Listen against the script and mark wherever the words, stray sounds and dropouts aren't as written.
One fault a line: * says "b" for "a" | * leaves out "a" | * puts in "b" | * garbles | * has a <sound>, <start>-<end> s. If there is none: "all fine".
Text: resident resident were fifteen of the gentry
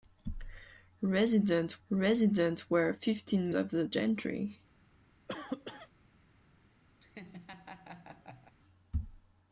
* has a cough, 5.3-5.9 s
* has a laugh, 7.0-8.5 s